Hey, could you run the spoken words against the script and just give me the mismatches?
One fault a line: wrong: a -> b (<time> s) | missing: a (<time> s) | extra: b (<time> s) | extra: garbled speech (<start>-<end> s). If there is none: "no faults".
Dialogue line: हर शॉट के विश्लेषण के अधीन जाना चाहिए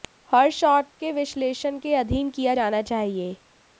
extra: किया (2.3 s)